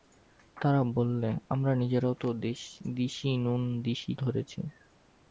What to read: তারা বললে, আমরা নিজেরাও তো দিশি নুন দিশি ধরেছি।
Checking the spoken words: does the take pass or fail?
pass